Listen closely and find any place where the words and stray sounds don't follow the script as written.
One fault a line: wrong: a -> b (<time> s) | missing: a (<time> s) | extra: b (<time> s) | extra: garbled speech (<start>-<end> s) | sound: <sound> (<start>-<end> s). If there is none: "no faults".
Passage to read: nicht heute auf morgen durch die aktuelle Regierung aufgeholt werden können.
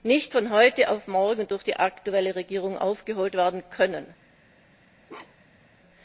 extra: von (0.3 s)
sound: bark (5.1-5.7 s)